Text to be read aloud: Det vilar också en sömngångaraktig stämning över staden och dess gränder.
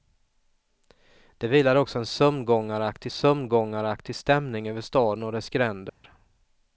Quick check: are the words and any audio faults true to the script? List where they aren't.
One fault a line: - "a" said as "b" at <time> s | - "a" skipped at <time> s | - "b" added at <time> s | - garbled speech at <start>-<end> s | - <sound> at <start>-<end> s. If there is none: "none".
- "sömngångaraktig" added at 3.1 s
- dropout at 5.9-6.0 s